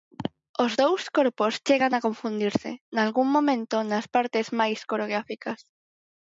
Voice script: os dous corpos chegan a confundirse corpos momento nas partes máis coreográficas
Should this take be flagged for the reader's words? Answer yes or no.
yes